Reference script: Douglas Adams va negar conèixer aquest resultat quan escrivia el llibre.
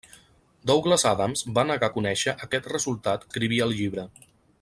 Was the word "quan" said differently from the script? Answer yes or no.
yes